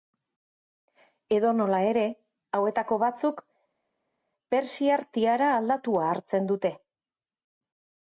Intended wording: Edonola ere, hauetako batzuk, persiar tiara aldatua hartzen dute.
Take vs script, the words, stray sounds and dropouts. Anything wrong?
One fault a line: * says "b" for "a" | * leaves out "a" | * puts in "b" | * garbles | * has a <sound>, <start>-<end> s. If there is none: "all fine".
all fine